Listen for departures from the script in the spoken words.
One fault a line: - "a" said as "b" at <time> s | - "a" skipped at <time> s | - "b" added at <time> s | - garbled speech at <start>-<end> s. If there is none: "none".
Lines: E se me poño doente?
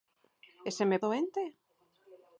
- "poño" skipped at 1.0 s